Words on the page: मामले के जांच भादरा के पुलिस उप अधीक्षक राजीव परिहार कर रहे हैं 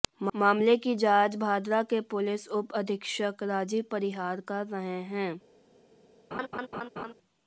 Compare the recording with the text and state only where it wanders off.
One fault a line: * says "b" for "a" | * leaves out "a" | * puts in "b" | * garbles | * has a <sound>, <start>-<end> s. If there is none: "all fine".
* says "की" for "के"
* has a laugh, 6.3-7.1 s